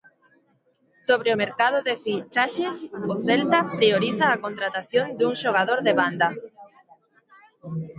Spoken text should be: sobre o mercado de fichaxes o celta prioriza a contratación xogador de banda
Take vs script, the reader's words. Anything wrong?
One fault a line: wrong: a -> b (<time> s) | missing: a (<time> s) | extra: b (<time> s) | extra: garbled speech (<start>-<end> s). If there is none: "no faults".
extra: dun (5.2 s)